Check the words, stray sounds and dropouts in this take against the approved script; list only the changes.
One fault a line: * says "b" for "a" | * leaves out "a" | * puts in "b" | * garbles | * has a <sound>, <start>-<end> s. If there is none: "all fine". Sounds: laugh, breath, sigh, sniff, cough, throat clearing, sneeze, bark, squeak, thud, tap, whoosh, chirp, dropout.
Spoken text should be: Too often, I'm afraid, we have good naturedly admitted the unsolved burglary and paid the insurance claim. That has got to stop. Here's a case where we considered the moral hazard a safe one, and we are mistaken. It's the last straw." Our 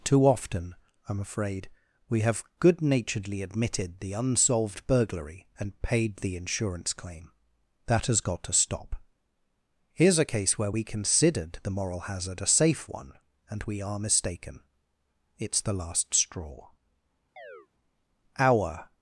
* has a chirp, 17.4-17.7 s